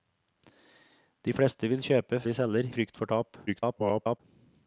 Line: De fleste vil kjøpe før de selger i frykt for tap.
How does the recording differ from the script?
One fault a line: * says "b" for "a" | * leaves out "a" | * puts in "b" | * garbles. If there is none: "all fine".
* leaves out "før"
* leaves out "i"
* garbles